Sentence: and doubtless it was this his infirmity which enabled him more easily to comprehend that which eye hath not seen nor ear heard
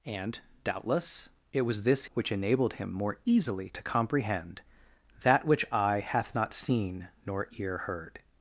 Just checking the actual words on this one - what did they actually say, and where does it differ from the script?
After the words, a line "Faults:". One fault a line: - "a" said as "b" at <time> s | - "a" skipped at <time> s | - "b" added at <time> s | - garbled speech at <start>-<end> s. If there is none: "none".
and doubtless it was this which enabled him more easily to comprehend that which eye hath not seen nor ear heard
Faults:
- "his infirmity" skipped at 2.0 s